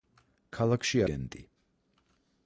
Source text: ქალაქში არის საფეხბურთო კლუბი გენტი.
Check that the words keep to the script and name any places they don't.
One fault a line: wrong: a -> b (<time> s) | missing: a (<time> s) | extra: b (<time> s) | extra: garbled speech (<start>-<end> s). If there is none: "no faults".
missing: არის საფეხბურთო კლუბი (1.0 s)